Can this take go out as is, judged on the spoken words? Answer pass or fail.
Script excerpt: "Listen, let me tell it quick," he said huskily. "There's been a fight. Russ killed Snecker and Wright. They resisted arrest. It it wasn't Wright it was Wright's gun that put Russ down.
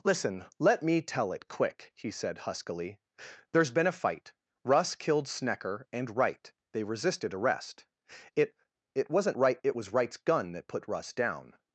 pass